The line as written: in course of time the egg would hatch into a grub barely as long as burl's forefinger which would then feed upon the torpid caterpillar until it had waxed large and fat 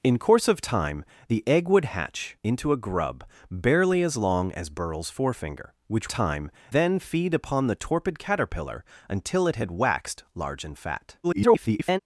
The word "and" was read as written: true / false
true